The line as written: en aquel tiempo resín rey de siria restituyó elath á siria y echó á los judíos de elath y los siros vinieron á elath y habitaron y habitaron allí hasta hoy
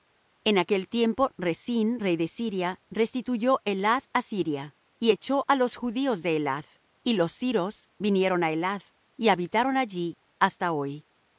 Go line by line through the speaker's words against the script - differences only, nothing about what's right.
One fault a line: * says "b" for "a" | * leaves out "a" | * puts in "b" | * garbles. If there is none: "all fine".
* leaves out "y habitaron"